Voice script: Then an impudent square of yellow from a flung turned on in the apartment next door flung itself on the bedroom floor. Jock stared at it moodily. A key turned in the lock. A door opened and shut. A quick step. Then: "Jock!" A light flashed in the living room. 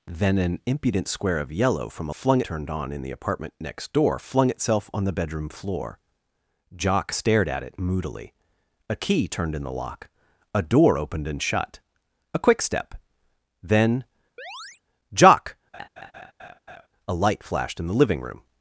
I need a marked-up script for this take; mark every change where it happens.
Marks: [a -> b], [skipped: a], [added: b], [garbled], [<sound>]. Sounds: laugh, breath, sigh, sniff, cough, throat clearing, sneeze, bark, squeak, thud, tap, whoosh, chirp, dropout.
Then an impudent square of yellow from a flung turned on in the apartment next door flung itself on the bedroom floor. Jock stared at it moodily. A key turned in the lock. A door opened and shut. A quick step. Then: [chirp] "Jock!" [laugh] A light flashed in the living room.